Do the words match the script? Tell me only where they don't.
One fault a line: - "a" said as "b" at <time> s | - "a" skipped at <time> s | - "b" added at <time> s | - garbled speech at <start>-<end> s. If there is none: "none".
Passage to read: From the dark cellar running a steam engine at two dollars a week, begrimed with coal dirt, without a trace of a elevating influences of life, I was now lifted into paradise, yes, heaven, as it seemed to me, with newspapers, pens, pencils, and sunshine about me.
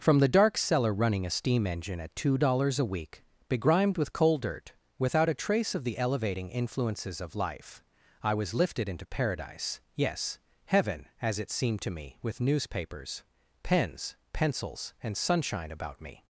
- "a" said as "the" at 5.8 s
- "now" skipped at 8.6 s